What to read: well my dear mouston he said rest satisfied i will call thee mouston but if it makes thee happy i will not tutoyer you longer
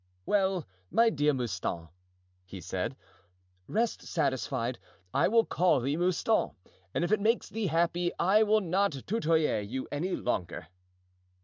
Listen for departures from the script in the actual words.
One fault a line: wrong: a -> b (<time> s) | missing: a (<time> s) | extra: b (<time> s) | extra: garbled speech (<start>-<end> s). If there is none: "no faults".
wrong: but -> and (6.9 s)
extra: any (9.9 s)